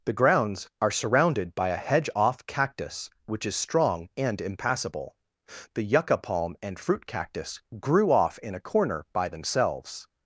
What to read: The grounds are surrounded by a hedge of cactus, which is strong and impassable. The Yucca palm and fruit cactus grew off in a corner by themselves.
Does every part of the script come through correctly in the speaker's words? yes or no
no